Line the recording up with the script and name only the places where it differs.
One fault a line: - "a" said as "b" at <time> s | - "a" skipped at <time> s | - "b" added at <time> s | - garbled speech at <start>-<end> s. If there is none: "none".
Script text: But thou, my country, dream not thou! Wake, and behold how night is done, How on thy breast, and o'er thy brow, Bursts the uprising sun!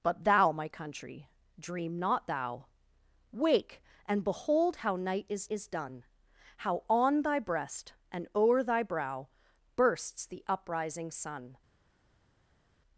- "is" added at 5.5 s